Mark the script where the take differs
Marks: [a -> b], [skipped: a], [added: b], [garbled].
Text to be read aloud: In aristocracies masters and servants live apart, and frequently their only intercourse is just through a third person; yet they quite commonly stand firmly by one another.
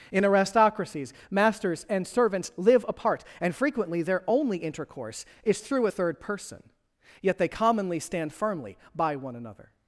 In aristocracies masters and servants live apart, and frequently their only intercourse is [skipped: just] through a third person; yet they [skipped: quite] commonly stand firmly by one another.